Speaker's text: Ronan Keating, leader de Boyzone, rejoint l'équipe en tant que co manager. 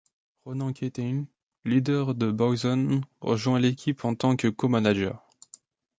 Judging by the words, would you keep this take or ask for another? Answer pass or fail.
pass